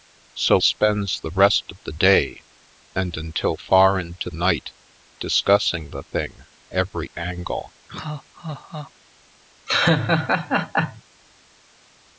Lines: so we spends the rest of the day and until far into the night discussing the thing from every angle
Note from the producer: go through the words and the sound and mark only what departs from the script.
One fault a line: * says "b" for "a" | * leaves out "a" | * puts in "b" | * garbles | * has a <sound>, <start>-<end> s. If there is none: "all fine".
* leaves out "we"
* leaves out "the"
* leaves out "from"
* has a laugh, 7.9-8.9 s
* has a laugh, 9.7-11.0 s